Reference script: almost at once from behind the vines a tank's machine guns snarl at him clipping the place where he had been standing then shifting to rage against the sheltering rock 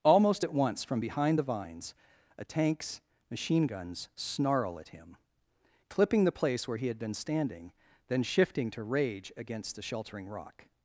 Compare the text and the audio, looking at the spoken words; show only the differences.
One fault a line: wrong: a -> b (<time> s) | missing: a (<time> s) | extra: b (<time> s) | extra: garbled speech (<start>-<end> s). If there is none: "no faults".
no faults